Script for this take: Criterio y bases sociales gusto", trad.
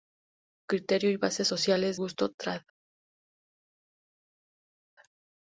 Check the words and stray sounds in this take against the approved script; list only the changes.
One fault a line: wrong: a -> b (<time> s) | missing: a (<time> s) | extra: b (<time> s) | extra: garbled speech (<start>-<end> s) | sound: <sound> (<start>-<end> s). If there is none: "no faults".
no faults